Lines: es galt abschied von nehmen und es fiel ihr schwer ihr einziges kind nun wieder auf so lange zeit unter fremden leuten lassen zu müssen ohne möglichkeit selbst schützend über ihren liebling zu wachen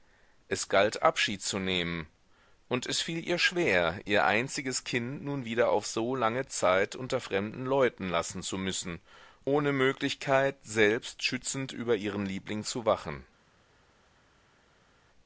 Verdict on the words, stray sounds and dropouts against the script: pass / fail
fail